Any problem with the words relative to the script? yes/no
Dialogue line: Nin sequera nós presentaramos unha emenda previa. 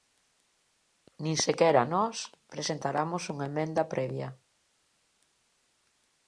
no